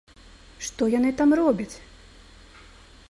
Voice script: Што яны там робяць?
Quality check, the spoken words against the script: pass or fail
pass